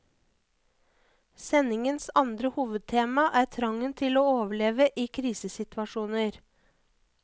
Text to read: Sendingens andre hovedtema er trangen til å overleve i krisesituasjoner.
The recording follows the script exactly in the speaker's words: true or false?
true